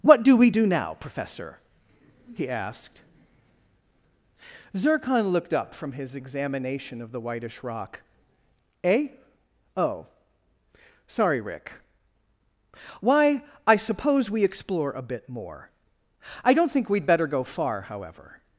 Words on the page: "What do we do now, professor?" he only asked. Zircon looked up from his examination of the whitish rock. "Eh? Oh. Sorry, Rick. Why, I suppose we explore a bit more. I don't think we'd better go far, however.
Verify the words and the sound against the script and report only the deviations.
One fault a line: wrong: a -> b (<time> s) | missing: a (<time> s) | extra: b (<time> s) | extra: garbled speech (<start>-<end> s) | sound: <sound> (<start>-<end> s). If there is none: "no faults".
missing: only (2.5 s)